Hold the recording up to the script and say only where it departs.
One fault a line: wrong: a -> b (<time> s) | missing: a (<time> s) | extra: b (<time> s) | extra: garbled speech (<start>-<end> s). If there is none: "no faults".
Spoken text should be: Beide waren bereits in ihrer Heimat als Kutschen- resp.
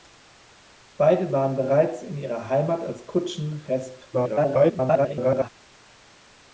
extra: garbled speech (4.1-5.5 s)